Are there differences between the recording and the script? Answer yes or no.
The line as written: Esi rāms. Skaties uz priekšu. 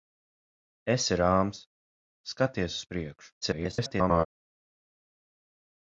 yes